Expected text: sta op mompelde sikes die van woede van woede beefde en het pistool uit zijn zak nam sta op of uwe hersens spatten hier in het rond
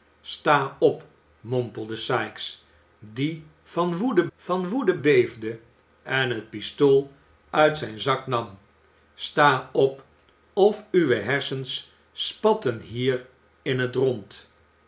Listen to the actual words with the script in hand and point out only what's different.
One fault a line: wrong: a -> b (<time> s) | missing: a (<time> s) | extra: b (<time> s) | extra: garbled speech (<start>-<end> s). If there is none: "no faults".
no faults